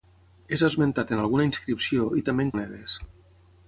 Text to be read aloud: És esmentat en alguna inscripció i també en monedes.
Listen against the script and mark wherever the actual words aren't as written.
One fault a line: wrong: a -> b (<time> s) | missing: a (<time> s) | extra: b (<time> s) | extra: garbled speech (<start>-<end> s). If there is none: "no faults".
no faults